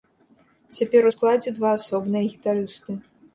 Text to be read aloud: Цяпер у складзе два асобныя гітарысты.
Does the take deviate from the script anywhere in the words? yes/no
no